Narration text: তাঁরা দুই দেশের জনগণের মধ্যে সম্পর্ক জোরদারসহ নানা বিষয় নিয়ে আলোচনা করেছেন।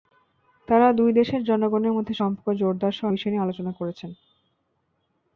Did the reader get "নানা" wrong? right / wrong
wrong